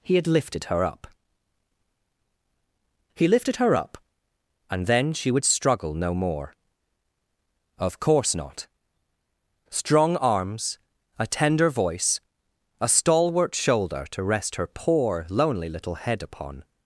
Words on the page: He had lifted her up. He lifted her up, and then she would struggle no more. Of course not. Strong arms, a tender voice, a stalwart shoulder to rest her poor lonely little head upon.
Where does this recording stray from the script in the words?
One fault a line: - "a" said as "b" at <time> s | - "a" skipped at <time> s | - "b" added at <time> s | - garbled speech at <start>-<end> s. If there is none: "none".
none